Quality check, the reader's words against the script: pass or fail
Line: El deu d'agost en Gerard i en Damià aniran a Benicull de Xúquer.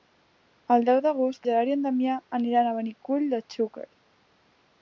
fail